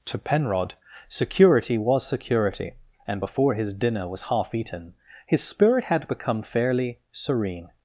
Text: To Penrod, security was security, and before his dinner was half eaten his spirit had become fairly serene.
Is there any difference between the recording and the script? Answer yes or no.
no